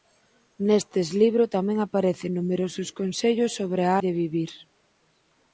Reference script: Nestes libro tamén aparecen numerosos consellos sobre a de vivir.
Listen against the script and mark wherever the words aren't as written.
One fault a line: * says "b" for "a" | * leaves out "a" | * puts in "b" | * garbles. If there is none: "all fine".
all fine